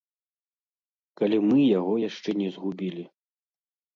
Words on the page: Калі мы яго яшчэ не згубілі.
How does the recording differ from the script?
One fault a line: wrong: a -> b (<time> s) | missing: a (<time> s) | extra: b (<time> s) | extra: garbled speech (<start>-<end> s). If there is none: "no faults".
no faults